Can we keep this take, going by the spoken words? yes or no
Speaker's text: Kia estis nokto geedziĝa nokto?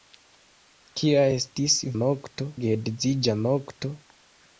yes